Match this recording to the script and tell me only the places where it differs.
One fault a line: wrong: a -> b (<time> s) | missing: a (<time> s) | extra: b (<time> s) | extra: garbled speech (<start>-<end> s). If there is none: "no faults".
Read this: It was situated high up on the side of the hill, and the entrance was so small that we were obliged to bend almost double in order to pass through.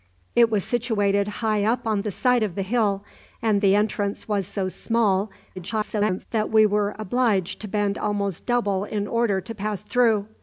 extra: garbled speech (5.6-6.3 s)